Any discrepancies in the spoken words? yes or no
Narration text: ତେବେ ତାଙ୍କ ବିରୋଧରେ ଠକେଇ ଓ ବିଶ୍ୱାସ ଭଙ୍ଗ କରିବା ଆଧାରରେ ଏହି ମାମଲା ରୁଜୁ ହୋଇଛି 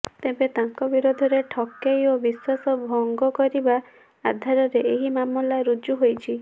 no